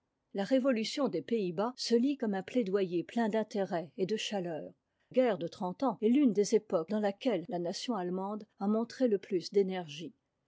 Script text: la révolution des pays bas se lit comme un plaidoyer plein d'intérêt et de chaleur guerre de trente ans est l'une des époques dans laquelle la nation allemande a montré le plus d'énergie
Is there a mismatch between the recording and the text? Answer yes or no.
no